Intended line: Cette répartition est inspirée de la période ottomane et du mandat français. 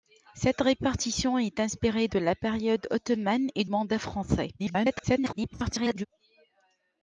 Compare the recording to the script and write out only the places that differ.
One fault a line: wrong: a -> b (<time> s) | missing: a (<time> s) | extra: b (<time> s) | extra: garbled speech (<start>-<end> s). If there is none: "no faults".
missing: du (3.6 s)
extra: garbled speech (4.6-6.1 s)